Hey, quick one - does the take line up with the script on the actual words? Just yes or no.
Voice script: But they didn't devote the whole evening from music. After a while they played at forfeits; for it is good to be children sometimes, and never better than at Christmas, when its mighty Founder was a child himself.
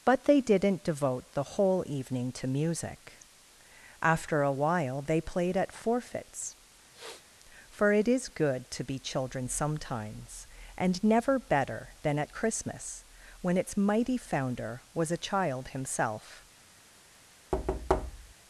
no